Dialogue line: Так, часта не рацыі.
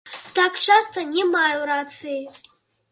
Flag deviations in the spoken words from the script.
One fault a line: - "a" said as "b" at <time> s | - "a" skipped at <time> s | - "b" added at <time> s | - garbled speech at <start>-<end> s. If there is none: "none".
- "маю" added at 1.2 s